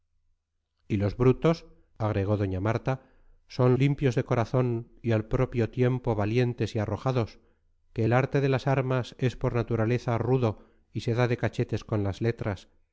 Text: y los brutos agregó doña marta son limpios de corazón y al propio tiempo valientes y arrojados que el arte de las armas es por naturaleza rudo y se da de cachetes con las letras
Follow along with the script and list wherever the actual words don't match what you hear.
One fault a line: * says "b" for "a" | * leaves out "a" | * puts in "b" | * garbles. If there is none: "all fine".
all fine